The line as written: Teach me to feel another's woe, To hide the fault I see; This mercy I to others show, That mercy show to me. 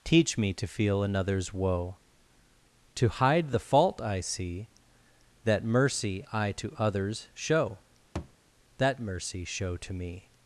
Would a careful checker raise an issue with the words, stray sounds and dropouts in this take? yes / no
yes